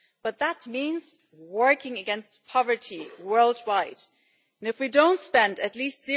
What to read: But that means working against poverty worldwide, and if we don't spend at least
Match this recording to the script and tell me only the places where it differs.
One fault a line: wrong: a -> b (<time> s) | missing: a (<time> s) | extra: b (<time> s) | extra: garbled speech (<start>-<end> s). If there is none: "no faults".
no faults